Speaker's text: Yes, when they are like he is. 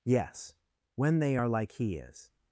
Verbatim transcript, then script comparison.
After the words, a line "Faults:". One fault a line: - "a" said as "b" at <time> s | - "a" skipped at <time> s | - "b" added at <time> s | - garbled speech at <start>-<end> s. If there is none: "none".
Yes, when they are like he is.
Faults:
none